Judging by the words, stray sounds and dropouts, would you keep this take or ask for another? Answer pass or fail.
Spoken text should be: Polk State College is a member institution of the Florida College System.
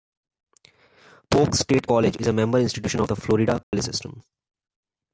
fail